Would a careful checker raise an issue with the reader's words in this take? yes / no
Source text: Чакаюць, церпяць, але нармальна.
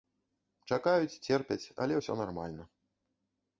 yes